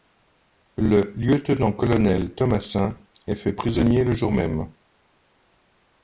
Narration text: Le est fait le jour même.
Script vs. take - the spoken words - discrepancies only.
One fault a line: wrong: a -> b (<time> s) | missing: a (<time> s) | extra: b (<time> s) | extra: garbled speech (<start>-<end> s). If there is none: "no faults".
extra: lieutenant colonel Thomassin (1.1 s)
extra: prisonnier (3.5 s)